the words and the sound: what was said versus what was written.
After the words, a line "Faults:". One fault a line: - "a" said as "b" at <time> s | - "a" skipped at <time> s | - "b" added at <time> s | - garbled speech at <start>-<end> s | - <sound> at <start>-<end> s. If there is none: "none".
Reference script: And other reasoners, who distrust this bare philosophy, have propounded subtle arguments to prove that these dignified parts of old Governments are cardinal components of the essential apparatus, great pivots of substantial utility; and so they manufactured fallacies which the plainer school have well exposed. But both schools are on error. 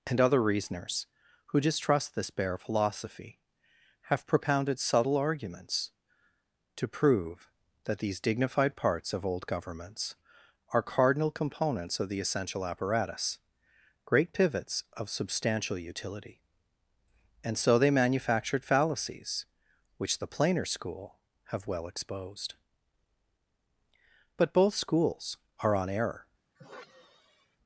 And other reasoners, who distrust this bare philosophy, have propounded subtle arguments to prove that these dignified parts of old Governments are cardinal components of the essential apparatus, great pivots of substantial utility; and so they manufactured fallacies which the plainer school have well exposed. But both schools are on error.
Faults:
- sigh at 26.5-27.6 s